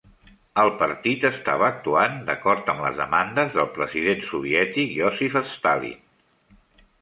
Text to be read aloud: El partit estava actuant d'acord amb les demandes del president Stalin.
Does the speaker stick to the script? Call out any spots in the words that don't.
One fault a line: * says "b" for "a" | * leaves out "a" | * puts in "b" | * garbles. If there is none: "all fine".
* puts in "soviètic Iósif"